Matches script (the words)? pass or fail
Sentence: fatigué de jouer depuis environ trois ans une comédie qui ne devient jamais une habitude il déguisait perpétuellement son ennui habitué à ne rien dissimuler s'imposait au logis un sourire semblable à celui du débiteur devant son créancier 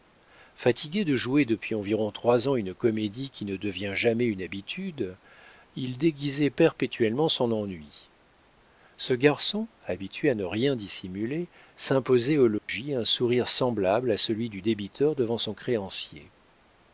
fail